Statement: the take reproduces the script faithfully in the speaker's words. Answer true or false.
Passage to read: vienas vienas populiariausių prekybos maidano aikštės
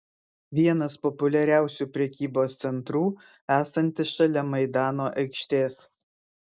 false